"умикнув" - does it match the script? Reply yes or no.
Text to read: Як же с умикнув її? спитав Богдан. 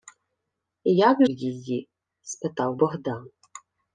no